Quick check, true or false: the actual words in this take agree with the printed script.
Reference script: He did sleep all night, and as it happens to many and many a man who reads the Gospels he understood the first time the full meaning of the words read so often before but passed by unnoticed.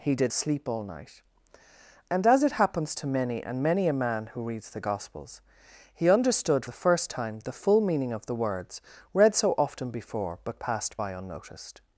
true